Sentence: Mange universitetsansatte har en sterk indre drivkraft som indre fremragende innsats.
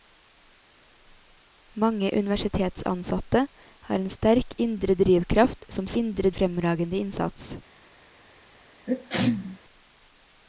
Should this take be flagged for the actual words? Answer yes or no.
no